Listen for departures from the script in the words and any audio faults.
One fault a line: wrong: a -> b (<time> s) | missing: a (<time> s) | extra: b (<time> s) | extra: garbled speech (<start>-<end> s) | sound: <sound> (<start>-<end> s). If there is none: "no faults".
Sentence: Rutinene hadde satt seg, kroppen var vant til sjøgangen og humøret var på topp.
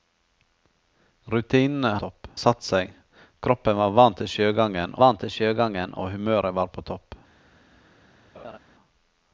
wrong: hadde -> topp (2.0 s)
extra: vant til sjøgangen (5.0 s)
sound: laugh (8.3-8.6 s)